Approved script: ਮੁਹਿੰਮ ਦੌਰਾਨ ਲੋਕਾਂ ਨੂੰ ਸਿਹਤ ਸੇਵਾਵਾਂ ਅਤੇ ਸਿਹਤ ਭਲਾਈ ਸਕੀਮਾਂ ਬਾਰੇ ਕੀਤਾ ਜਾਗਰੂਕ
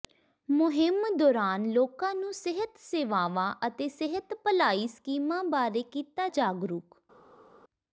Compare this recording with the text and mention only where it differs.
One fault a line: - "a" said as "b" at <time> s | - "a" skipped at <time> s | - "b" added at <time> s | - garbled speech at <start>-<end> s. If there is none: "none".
none